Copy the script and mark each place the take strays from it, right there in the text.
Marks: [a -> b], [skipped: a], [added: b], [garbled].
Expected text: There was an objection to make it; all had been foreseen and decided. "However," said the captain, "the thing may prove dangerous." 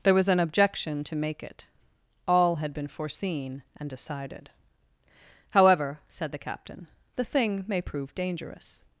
There was an objection to make it; all had been foreseen and decided. "However," said the captain, "the thing may prove dangerous."